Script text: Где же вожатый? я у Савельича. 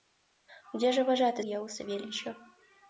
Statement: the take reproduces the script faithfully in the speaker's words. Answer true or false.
true